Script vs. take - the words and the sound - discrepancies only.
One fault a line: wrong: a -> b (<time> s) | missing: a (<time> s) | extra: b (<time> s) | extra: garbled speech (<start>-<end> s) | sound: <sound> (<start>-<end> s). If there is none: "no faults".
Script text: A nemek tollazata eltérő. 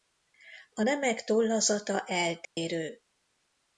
sound: dropout (2.4-2.6 s)